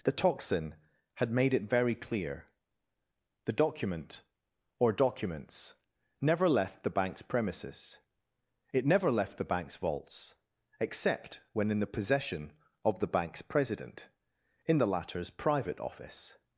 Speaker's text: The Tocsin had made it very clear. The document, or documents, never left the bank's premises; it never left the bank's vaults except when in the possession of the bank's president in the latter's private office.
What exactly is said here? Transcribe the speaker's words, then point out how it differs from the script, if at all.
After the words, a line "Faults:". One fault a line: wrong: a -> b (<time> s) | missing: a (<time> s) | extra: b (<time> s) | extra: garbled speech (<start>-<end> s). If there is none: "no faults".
The Tocsin had made it very clear. The document, or documents, never left the bank's premises; it never left the bank's vaults except when in the possession of the bank's president in the latter's private office.
Faults:
no faults